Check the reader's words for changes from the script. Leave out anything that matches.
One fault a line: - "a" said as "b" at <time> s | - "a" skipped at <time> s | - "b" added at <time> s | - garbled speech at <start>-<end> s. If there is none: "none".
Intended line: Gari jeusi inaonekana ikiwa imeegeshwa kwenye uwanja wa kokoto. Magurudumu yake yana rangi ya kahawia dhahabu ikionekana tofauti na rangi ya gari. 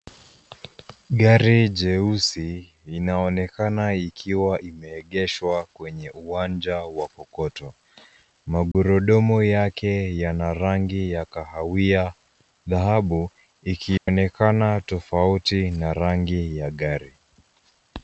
none